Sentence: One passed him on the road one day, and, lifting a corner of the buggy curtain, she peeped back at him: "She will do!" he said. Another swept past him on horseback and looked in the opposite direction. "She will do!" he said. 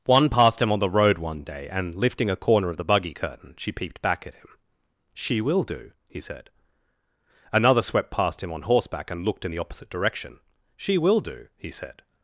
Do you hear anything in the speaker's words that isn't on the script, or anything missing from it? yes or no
no